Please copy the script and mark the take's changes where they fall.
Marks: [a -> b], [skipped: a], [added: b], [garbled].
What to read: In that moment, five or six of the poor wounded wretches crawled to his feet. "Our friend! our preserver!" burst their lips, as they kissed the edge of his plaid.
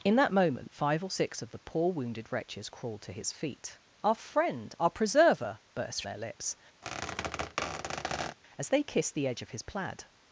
In that moment, five or six of the poor wounded wretches crawled to his feet. "Our friend! our preserver!" burst their lips, as they kissed the edge of his plaid.